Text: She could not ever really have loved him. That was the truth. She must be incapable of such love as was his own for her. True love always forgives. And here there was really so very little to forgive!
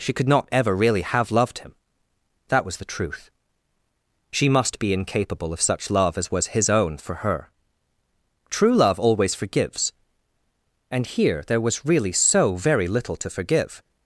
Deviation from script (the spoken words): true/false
false